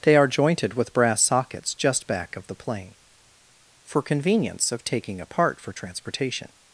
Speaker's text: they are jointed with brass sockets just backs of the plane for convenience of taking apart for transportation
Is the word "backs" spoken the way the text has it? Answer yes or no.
no